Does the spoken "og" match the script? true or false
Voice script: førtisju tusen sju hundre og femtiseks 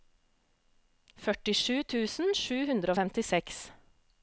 true